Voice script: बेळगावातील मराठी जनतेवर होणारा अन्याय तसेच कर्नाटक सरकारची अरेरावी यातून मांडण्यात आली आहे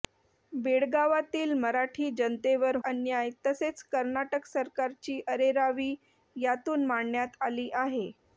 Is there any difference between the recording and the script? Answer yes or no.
yes